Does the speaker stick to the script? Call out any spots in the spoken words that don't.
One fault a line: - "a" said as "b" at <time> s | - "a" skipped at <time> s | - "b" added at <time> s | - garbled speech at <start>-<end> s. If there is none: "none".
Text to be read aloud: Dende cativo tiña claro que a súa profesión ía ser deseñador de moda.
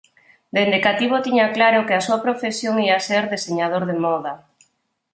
none